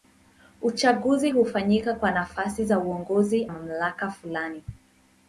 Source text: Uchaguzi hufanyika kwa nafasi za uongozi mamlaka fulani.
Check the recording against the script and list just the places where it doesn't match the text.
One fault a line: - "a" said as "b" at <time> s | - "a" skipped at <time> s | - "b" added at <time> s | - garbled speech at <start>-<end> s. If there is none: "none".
none